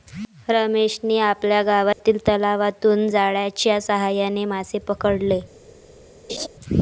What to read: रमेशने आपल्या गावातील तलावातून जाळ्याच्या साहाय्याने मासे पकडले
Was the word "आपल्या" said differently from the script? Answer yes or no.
no